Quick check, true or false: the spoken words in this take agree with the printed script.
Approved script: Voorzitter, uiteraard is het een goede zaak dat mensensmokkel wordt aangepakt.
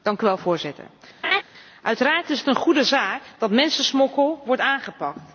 true